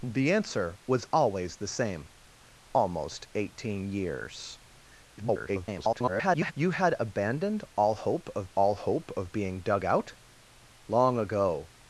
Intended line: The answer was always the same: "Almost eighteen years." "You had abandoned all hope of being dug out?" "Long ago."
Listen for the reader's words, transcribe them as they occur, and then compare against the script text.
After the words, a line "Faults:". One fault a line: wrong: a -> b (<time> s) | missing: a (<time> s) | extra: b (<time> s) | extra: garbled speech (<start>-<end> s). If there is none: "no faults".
The answer was always the same: "Almost eighteen years." [garbled] "You had abandoned all hope of all hope of being dug out?" "Long ago."
Faults:
extra: garbled speech (5.2-6.5 s)
extra: all hope of (8.6 s)